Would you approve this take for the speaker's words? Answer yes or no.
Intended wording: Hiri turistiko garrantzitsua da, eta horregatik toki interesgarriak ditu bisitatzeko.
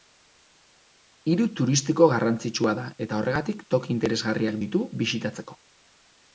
yes